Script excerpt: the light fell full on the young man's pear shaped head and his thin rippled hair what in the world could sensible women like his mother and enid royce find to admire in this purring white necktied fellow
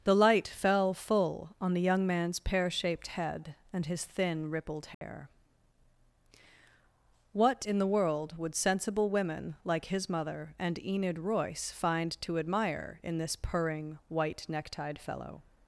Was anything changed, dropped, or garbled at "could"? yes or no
yes